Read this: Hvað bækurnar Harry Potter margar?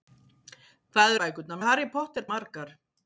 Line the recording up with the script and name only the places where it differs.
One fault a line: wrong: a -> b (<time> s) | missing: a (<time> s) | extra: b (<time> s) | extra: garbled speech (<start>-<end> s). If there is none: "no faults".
no faults